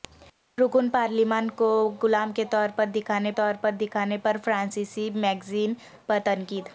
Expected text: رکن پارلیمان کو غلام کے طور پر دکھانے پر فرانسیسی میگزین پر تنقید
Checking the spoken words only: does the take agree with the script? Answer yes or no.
no